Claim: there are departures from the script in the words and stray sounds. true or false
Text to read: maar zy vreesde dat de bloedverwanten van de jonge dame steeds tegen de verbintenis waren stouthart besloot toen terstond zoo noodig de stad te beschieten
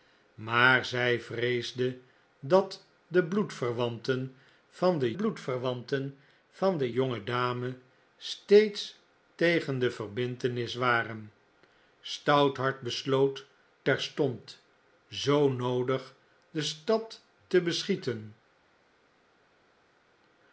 true